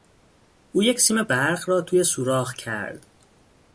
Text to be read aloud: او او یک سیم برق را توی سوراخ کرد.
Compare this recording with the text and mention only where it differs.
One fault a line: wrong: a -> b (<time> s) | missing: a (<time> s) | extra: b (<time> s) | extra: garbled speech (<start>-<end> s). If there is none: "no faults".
missing: او (0.8 s)